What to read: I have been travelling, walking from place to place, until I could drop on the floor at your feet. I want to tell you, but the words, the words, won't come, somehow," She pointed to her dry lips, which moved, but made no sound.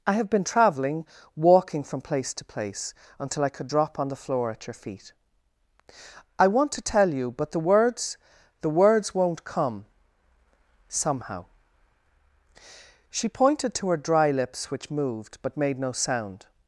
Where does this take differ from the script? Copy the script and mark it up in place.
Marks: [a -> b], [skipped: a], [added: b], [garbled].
I have been travelling, walking from place to place, until I could drop on the floor at your feet. I want to tell you, but the words, the words, won't come, somehow," She pointed to her dry lips, which moved, but made no sound.